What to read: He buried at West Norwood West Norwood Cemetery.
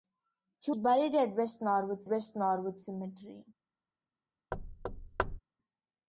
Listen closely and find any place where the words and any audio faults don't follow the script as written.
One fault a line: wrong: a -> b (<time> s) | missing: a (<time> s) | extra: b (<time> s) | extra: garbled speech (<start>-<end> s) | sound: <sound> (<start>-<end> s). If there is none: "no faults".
sound: thud (4.5-5.4 s)